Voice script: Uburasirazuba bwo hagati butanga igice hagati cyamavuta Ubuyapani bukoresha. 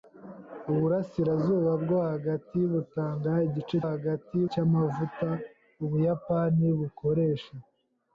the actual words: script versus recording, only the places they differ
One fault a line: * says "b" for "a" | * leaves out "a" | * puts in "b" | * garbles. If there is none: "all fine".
all fine